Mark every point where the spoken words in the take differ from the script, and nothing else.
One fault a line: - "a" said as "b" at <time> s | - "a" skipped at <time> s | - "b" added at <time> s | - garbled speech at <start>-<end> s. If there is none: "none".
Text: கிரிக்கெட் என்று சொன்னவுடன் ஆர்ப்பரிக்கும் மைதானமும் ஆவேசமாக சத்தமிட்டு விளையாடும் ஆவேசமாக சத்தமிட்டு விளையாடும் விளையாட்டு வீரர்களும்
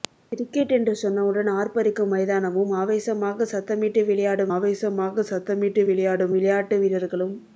none